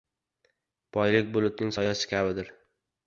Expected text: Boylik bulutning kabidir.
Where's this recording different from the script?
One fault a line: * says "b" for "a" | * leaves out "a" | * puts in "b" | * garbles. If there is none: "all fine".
* puts in "soyasi"